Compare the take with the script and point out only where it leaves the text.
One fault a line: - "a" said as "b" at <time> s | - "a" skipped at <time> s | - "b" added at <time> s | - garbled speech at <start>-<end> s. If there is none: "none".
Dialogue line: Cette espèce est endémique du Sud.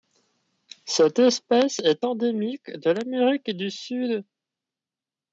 - "de l'Amérique" added at 2.7 s